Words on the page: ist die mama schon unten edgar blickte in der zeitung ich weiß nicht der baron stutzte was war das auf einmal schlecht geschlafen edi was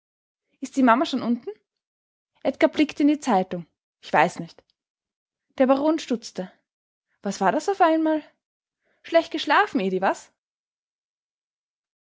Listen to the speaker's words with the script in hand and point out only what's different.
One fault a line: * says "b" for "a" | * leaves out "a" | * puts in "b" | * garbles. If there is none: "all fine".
* says "die" for "der"